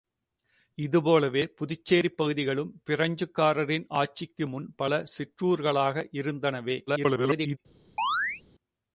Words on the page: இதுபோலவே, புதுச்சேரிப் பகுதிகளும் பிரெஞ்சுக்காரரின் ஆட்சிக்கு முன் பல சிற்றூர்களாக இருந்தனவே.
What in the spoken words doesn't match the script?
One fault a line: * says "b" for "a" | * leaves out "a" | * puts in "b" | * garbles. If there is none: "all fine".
* garbles